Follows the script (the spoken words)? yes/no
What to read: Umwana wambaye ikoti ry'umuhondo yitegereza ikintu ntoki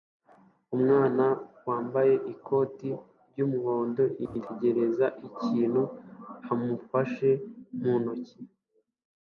no